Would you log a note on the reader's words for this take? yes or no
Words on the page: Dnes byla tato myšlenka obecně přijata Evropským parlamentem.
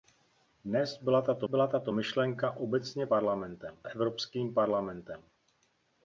yes